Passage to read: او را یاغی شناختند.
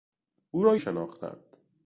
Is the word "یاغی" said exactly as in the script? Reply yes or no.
no